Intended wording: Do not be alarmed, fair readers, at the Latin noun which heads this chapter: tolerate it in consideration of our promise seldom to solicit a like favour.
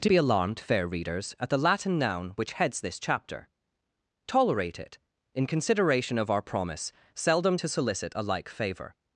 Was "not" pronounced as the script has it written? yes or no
no